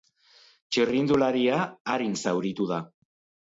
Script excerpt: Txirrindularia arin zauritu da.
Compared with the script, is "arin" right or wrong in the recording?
right